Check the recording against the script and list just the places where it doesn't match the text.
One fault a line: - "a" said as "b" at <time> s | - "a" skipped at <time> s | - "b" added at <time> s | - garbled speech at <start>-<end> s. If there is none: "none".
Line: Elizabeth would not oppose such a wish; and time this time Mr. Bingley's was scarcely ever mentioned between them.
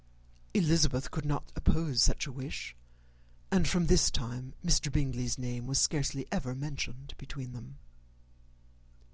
- "would" said as "could" at 1.1 s
- "time" said as "from" at 3.7 s
- "name" added at 5.4 s